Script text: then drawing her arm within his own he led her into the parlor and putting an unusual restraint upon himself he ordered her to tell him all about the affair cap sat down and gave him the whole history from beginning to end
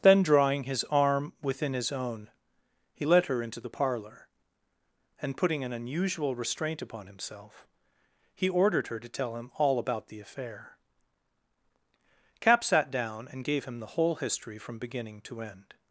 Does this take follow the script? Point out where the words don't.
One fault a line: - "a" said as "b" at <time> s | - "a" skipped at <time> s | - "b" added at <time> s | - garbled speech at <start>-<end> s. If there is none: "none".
- "her" said as "his" at 0.6 s